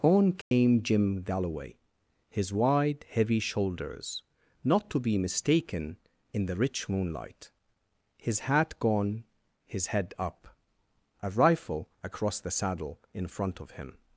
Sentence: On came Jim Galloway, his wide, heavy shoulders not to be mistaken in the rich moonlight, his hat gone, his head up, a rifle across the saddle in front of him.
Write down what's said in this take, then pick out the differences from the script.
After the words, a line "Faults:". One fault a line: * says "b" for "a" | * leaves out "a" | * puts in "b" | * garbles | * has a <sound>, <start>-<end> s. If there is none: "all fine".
On came Jim Galloway, his wide, heavy shoulders not to be mistaken in the rich moonlight, his hat gone, his head up, a rifle across the saddle in front of him.
Faults:
* has a dropout, 0.4-0.5 s